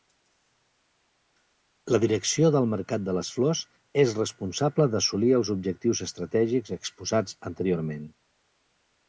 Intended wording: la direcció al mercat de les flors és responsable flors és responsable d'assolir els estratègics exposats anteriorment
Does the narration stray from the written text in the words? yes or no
yes